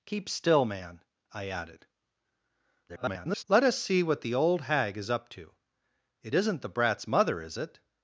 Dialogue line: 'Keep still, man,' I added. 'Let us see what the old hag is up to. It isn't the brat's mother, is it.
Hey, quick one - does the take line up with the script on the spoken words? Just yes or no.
no